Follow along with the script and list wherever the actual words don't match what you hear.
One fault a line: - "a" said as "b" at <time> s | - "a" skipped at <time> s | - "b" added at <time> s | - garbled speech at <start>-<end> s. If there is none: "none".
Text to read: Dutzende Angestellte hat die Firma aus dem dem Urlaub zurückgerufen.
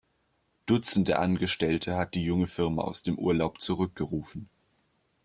- "junge" added at 2.2 s
- "dem" skipped at 3.2 s